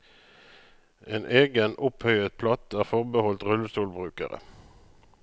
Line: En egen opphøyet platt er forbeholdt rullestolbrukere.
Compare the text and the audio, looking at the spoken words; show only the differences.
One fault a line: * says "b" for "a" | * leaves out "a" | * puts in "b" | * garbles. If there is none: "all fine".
all fine